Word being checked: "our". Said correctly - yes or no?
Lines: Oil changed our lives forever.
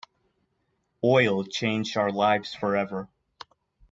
yes